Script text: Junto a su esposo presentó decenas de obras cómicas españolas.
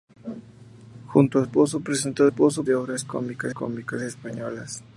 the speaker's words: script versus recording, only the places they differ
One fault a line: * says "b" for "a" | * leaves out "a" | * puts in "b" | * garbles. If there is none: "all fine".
* leaves out "su"
* says "esposo" for "decenas"
* puts in "cómicas"